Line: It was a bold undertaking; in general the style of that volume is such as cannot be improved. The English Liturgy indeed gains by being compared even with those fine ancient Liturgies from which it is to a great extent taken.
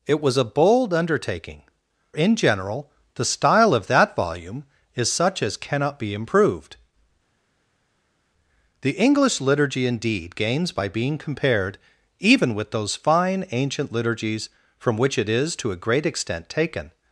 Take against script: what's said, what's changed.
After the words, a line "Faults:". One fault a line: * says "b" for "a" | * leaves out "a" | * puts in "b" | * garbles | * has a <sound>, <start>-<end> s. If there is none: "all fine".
It was a bold undertaking; in general the style of that volume is such as cannot be improved. The English Liturgy indeed gains by being compared even with those fine ancient Liturgies from which it is to a great extent taken.
Faults:
all fine